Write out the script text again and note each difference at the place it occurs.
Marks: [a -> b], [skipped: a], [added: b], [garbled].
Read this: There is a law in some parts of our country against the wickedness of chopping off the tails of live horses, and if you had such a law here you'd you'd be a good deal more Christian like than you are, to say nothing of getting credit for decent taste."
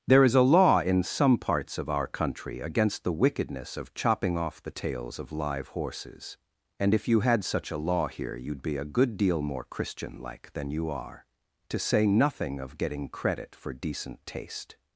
There is a law in some parts of our country against the wickedness of chopping off the tails of live horses, and if you had such a law here you'd [skipped: you'd] be a good deal more Christian like than you are, to say nothing of getting credit for decent taste."